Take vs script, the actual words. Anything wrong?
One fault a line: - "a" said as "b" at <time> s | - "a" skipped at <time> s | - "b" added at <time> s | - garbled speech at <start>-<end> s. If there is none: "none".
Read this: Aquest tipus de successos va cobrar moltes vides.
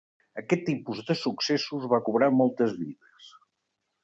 none